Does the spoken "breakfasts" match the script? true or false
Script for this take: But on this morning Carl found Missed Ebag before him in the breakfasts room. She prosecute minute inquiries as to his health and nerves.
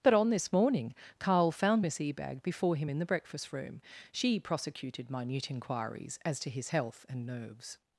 false